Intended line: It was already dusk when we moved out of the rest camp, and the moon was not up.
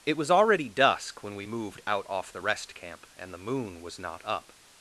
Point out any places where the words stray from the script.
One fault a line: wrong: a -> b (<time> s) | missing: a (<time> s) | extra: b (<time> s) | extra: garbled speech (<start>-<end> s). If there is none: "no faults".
wrong: of -> off (2.1 s)